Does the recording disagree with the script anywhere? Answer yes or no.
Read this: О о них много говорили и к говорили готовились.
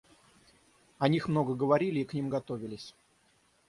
yes